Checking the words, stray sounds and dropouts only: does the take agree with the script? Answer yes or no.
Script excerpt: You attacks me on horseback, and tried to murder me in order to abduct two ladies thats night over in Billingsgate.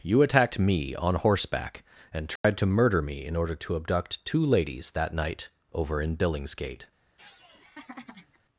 no